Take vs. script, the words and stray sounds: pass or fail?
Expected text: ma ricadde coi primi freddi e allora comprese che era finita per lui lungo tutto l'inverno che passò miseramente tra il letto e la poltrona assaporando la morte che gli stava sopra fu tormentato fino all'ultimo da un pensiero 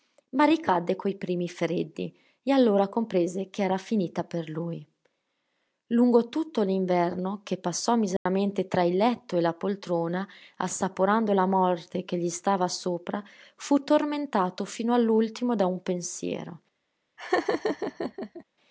fail